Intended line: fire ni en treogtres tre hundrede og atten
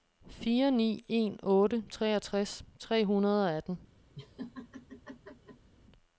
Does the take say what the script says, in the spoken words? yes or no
no